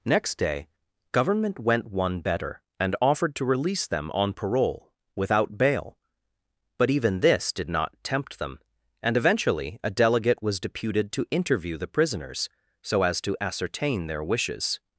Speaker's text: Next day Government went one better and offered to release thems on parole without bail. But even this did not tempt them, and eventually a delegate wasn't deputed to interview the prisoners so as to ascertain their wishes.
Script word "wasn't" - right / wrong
wrong